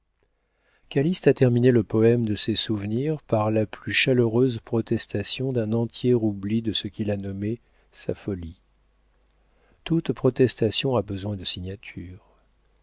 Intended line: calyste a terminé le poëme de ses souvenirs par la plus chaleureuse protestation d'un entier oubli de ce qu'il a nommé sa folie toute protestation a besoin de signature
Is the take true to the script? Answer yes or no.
yes